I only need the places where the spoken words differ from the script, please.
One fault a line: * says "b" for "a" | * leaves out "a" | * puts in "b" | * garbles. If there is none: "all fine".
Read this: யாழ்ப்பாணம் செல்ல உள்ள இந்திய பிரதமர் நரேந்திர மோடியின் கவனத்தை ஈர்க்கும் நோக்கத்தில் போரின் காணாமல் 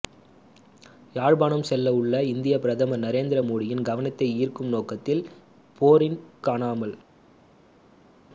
all fine